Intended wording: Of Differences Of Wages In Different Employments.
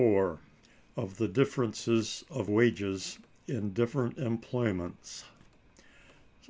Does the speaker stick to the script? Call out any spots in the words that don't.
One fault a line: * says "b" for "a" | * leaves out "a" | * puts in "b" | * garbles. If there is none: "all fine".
* puts in "The"